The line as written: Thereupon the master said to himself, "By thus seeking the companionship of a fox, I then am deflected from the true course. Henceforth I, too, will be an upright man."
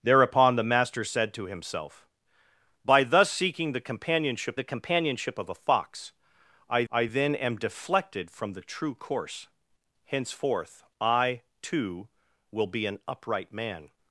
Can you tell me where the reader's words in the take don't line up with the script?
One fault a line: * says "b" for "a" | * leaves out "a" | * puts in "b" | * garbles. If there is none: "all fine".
* puts in "the companionship"
* puts in "I"